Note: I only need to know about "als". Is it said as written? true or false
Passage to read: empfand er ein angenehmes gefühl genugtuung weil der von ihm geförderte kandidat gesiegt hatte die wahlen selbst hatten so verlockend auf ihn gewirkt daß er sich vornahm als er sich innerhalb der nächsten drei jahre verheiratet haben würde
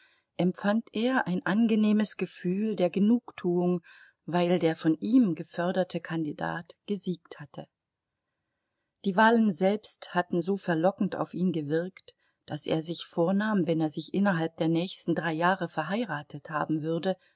false